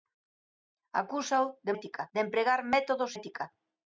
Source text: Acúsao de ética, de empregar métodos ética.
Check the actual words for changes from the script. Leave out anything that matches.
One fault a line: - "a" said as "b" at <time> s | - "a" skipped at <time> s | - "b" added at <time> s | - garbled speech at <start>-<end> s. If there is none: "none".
none